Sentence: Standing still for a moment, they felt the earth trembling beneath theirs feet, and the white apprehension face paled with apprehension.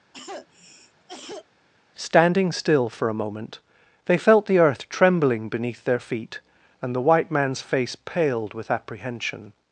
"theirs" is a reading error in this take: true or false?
true